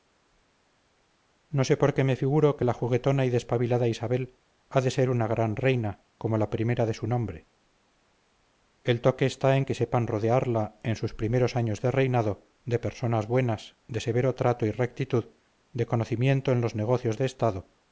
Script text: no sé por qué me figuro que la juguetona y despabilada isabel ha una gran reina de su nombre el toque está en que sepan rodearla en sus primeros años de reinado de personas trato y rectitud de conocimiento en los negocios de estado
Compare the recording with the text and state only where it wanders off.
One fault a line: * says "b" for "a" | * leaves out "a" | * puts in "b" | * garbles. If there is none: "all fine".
* puts in "de ser"
* puts in "como la primera"
* puts in "buenas de severo"